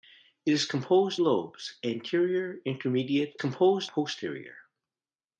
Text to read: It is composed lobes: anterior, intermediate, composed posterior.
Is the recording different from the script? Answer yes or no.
no